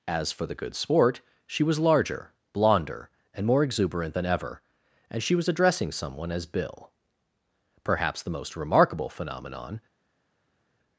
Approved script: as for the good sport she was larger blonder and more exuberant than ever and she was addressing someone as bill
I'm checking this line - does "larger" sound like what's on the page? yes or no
yes